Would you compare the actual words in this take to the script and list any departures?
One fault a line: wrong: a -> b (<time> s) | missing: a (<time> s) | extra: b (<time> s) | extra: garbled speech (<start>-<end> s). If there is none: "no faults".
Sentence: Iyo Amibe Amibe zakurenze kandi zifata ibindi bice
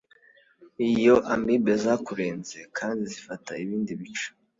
missing: Amibe (1.7 s)